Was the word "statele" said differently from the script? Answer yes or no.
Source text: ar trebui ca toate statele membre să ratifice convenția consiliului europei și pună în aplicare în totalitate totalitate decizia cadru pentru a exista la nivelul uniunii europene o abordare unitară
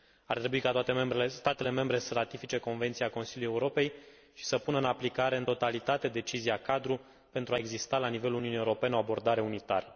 no